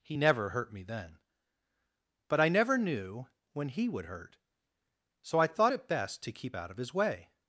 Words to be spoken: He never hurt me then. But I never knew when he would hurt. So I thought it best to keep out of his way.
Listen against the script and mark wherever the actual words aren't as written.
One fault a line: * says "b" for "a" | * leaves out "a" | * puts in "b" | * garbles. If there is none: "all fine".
all fine